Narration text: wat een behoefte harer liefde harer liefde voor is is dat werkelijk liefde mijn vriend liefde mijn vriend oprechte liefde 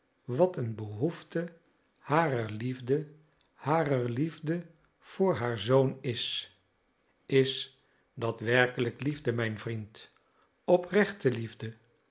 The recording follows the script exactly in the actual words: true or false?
false